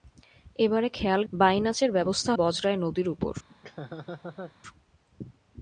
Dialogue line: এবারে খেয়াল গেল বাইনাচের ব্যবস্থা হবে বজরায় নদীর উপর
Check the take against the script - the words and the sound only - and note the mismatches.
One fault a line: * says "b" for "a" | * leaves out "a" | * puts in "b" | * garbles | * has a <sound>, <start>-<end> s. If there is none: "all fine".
* leaves out "গেল"
* leaves out "হবে"
* has a laugh, 3.5-4.6 s